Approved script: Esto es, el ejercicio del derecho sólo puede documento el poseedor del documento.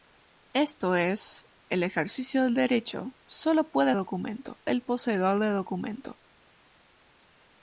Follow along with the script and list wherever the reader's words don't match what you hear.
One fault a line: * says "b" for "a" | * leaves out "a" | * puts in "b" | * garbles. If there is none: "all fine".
all fine